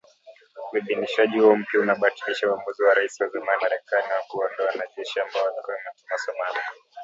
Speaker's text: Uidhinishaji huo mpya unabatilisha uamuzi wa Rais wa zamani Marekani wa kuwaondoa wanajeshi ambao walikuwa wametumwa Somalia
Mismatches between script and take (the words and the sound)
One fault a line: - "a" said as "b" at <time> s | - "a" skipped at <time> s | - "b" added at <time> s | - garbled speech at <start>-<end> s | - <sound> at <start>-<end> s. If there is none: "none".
none